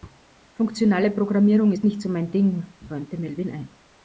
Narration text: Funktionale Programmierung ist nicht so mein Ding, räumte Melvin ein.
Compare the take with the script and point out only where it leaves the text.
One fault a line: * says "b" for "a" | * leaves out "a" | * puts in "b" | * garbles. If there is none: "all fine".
all fine